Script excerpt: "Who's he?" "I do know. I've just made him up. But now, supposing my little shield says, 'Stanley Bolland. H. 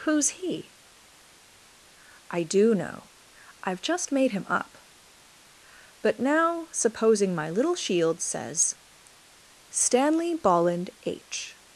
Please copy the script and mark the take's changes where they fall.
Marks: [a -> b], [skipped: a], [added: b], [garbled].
"Who's he?" "I do know. I've just made him up. But now, supposing my little shield says, 'Stanley Bolland. H.